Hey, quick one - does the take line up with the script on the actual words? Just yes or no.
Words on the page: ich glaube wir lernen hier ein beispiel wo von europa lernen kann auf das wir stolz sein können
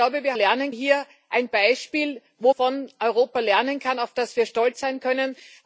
yes